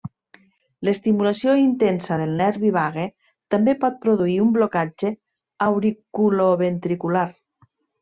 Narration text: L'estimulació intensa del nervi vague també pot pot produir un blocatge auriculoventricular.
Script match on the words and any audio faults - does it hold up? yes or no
no